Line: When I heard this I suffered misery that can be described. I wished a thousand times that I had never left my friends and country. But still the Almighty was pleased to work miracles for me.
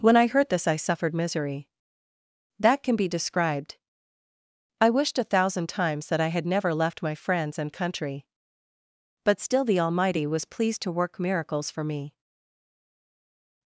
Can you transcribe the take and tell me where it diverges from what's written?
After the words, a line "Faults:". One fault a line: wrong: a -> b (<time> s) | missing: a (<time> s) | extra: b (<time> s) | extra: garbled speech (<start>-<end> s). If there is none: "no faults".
When I heard this I suffered misery that can be described. I wished a thousand times that I had never left my friends and country. But still the Almighty was pleased to work miracles for me.
Faults:
no faults